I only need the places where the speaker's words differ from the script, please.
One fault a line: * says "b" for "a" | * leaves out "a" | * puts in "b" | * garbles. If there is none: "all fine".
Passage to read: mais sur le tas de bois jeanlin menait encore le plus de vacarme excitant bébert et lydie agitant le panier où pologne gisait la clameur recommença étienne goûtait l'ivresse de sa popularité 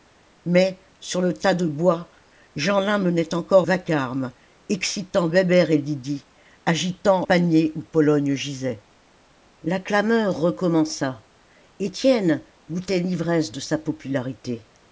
* leaves out "le plus de"
* leaves out "le"